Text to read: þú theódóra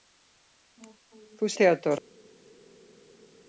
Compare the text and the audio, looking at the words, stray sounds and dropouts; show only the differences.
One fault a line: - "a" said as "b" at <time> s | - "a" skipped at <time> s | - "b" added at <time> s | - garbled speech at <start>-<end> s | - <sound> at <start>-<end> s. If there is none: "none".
none